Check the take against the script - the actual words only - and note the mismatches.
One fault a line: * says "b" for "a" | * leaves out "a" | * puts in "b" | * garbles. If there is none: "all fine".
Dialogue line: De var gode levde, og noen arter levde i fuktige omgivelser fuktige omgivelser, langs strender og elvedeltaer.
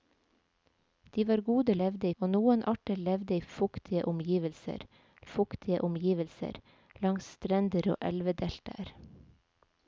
all fine